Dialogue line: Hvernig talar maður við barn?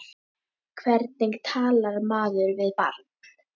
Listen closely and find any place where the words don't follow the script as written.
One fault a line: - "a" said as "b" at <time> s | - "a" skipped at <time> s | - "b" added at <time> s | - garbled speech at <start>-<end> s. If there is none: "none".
none